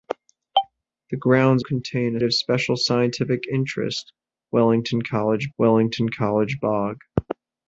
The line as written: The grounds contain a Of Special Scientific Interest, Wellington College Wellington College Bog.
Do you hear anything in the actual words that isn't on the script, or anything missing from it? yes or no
no